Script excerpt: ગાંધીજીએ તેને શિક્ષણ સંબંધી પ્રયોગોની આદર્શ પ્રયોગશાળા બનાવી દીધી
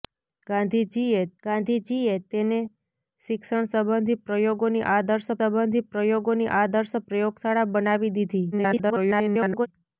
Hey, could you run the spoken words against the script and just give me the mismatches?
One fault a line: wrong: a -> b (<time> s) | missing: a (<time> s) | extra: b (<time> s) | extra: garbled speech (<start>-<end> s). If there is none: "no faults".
extra: ગાંધીજીએ (1.4 s)
extra: સંબંધી પ્રયોગોની આદર્શ (5.4 s)
extra: garbled speech (8.5-9.7 s)